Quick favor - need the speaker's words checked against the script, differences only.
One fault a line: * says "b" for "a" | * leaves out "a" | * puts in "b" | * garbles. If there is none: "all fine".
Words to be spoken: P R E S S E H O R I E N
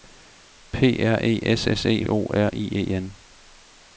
all fine